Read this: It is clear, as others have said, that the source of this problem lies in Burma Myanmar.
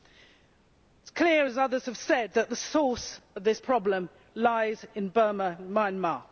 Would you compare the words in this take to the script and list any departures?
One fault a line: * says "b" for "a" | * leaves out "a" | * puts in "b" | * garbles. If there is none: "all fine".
all fine